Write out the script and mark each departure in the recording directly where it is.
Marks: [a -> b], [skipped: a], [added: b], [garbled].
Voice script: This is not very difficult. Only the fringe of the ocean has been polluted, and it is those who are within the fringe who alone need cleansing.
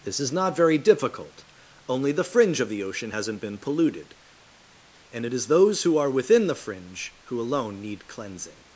This is not very difficult. Only the fringe of the ocean [has -> hasn't] been polluted, and it is those who are within the fringe who alone need cleansing.